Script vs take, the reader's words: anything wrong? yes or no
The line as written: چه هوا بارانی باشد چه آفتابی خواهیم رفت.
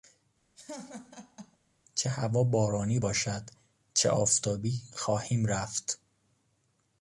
no